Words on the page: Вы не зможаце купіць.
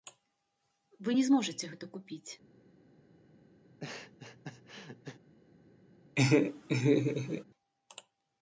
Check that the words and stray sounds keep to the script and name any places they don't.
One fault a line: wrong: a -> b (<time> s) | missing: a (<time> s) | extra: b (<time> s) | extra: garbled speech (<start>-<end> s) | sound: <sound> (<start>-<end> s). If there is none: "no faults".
extra: гэта (1.7 s)
sound: laugh (3.6-5.2 s)
sound: laugh (6.2-7.4 s)